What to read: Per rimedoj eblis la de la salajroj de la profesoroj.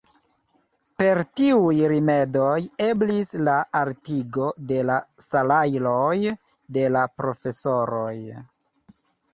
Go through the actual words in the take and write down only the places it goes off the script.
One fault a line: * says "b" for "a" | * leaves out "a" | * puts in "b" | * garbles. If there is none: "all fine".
* puts in "tiuj"
* puts in "altigo"